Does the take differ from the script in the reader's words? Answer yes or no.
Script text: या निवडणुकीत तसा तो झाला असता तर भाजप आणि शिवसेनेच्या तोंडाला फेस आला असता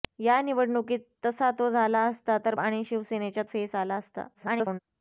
yes